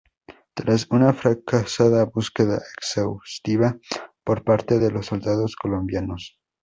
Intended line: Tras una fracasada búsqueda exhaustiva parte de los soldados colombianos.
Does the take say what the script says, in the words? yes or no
no